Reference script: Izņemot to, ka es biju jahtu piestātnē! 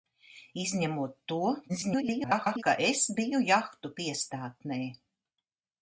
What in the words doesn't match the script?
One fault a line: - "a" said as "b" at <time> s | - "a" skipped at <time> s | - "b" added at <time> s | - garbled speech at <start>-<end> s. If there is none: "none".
- garbled speech at 1.7-2.6 s